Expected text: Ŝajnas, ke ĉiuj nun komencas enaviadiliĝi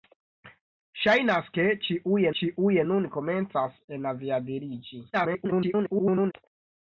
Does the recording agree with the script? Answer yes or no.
no